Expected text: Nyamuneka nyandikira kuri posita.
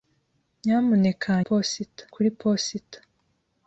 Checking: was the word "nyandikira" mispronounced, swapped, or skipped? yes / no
yes